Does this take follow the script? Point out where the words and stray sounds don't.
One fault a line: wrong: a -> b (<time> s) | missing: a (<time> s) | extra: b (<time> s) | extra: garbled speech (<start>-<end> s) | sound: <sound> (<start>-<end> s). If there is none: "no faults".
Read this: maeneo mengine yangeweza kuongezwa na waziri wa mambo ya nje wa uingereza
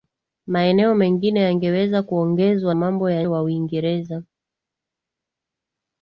missing: na waziri wa (2.8 s)
missing: nje (3.2 s)